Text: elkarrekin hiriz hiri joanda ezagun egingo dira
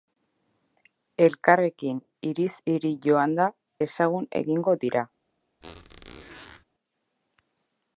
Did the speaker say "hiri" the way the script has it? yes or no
yes